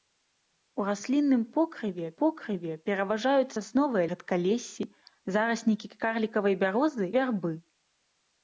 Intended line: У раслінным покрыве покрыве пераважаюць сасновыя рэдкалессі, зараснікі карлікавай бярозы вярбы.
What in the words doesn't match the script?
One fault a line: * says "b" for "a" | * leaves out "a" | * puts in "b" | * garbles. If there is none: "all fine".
all fine